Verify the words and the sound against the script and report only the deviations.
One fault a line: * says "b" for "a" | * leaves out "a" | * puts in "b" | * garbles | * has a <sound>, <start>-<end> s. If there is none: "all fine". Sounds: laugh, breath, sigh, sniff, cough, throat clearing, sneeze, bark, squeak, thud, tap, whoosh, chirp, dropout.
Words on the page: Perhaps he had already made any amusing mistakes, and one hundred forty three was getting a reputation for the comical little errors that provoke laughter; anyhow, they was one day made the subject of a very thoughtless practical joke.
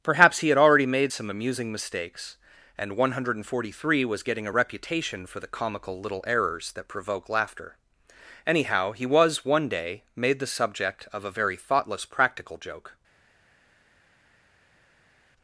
* says "some" for "any"
* says "he" for "they"